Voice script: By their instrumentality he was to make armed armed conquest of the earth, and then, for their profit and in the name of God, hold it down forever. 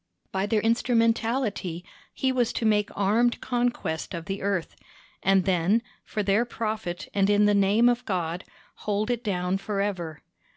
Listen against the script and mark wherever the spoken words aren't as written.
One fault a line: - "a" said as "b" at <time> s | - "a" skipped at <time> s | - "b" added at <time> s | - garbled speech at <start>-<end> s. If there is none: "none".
- "armed" skipped at 3.4 s